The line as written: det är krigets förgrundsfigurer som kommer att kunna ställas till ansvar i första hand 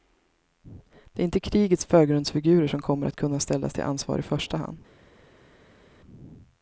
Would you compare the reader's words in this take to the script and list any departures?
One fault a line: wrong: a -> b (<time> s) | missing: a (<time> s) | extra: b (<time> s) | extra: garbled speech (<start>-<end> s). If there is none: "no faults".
extra: inte (1.2 s)